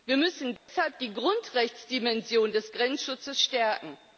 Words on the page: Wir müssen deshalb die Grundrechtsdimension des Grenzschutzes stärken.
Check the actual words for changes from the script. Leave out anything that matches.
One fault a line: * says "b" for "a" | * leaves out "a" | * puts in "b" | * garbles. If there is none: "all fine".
all fine